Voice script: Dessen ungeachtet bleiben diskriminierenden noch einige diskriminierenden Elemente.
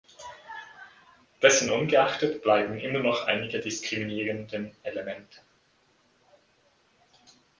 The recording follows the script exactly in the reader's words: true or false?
false